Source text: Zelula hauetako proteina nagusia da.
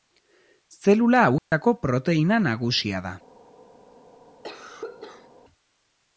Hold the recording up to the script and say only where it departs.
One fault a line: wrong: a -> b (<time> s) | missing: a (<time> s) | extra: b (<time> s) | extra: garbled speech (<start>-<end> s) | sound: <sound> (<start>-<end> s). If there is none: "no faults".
sound: dropout (1.4-1.5 s)
sound: cough (4.4-5.3 s)